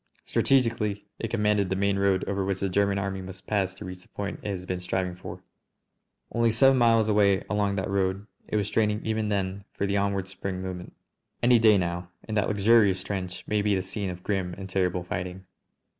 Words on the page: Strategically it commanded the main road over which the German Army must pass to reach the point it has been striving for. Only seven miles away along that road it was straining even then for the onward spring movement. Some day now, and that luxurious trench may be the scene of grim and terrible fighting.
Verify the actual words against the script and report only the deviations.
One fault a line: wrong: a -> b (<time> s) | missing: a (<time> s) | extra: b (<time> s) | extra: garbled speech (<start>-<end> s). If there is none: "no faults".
wrong: Some -> Any (11.4 s)